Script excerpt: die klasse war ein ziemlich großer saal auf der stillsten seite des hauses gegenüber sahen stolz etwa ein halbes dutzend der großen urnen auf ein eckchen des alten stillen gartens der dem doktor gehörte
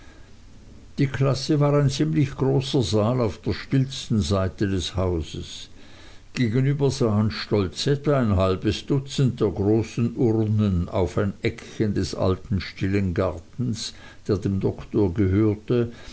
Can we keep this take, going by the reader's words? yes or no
yes